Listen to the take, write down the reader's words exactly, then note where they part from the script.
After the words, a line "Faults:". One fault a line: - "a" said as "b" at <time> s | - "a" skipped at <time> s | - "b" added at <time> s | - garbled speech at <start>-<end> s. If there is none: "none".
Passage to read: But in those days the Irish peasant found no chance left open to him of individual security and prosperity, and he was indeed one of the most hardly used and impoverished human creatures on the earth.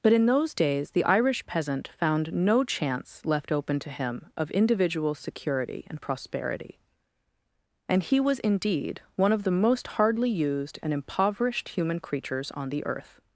But in those days the Irish peasant found no chance left open to him of individual security and prosperity, and he was indeed one of the most hardly used and impoverished human creatures on the earth.
Faults:
none